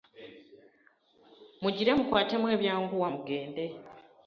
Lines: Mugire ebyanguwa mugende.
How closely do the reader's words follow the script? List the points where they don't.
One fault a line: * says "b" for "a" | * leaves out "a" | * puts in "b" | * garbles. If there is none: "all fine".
* puts in "mukwatemu"